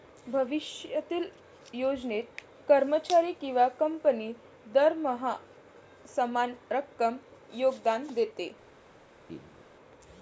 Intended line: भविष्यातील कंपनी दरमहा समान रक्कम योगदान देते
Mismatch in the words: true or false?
true